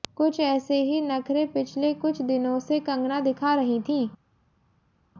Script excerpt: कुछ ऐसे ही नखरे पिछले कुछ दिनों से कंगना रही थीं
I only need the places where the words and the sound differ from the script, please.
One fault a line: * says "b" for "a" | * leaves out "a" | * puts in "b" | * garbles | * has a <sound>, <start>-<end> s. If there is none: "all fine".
* puts in "दिखा"